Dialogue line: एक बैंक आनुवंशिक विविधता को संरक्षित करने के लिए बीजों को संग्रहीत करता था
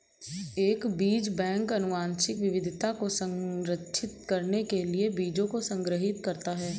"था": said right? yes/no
no